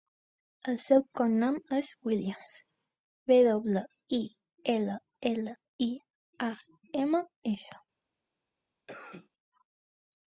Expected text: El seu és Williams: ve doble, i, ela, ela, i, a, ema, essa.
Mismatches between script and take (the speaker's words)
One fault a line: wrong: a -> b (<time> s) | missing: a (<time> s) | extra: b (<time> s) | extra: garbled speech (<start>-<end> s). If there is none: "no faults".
extra: cognom (1.2 s)